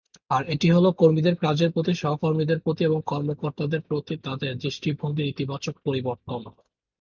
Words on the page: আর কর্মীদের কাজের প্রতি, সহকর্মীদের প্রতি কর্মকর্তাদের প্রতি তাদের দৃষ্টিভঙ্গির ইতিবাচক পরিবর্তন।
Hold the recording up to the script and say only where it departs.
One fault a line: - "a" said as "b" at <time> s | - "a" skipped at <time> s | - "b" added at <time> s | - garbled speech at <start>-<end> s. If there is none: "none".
- "এটি হলো" added at 0.5 s
- "এবং" added at 2.8 s